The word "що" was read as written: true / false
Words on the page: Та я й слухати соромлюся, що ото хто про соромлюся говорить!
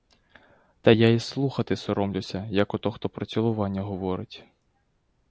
false